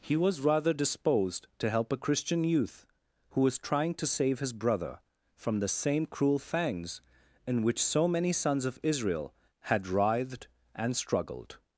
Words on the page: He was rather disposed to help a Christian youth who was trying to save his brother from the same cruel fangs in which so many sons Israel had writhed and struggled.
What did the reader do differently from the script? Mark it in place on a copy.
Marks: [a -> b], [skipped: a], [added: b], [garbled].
He was rather disposed to help a Christian youth who was trying to save his brother from the same cruel fangs in which so many sons [added: of] Israel had writhed and struggled.